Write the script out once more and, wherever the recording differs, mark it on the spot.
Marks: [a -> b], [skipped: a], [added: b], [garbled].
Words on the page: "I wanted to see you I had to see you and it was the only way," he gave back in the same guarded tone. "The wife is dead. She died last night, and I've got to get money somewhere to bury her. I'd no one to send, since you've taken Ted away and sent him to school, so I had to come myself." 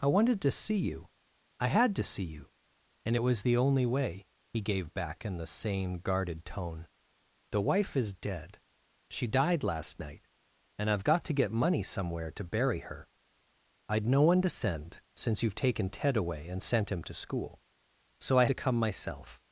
"I wanted to see you I had to see you and it was the only way," he gave back in the same guarded tone. "The wife is dead. She died last night, and I've got to get money somewhere to bury her. I'd no one to send, since you've taken Ted away and sent him to school, so I [skipped: had] to come myself."